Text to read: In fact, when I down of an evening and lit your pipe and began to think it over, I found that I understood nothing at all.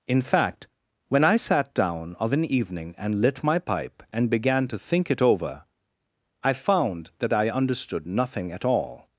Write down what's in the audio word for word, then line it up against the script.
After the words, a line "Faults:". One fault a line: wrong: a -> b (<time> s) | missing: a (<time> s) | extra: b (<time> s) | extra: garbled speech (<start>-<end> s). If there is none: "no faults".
In fact, when I sat down of an evening and lit my pipe and began to think it over, I found that I understood nothing at all.
Faults:
extra: sat (1.3 s)
wrong: your -> my (3.4 s)